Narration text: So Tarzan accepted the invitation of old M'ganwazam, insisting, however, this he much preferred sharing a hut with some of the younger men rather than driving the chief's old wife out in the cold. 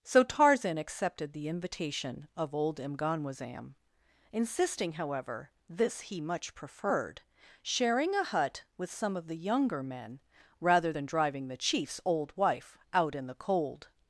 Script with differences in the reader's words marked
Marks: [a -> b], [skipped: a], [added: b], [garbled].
So Tarzan accepted the invitation of old M'ganwazam, insisting, however, this he much preferred sharing a hut with some of the younger men rather than driving the chief's old wife out in the cold.